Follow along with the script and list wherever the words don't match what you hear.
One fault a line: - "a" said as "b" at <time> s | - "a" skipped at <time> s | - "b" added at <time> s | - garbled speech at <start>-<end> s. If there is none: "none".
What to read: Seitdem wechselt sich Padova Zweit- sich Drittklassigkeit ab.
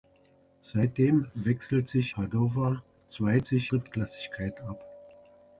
none